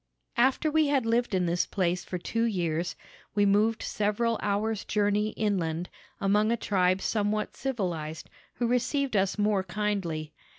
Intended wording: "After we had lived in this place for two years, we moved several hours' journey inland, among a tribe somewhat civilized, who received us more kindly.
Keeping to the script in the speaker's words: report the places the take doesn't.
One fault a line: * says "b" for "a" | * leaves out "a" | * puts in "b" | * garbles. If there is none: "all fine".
all fine